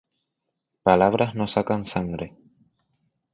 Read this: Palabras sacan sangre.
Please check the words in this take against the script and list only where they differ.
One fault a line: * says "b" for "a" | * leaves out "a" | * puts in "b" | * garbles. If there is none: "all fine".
* puts in "no"